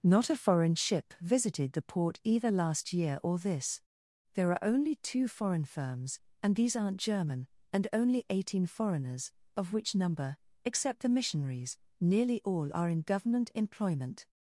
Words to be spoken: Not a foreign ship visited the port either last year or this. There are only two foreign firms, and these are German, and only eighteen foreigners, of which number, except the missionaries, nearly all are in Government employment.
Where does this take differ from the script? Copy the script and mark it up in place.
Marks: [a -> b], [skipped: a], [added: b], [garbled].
Not a foreign ship visited the port either last year or this. There are only two foreign firms, and these [are -> aren't] German, and only eighteen foreigners, of which number, except the missionaries, nearly all are in Government employment.